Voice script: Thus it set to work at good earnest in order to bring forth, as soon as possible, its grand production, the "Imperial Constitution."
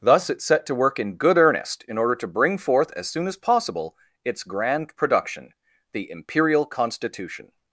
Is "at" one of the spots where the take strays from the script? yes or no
yes